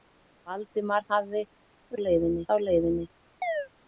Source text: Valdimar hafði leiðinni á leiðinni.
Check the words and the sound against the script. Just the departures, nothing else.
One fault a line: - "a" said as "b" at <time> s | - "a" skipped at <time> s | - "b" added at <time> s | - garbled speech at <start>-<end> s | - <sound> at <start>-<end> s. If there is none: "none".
- chirp at 3.4-3.7 s